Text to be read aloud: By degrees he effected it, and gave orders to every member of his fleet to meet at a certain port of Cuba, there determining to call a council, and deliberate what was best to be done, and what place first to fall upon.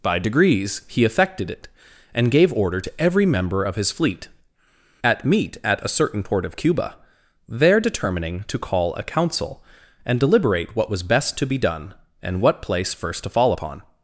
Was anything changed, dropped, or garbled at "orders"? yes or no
yes